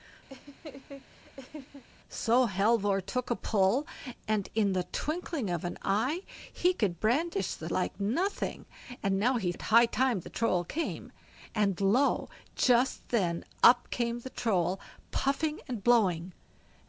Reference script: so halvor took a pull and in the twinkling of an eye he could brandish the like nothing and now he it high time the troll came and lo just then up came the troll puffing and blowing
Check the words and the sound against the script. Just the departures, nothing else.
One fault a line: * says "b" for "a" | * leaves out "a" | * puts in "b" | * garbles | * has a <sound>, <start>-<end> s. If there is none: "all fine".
* has a laugh, 0.3-1.8 s